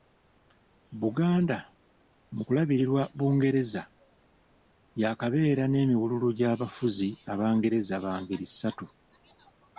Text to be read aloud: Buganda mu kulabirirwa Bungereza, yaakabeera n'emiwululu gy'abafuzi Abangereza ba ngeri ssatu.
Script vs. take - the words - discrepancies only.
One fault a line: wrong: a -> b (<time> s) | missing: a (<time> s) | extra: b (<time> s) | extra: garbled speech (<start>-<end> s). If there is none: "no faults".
no faults